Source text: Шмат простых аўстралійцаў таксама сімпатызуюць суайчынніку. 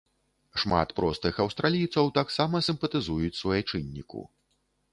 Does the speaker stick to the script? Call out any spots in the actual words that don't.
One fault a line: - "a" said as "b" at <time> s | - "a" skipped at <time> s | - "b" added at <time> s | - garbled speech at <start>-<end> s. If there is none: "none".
none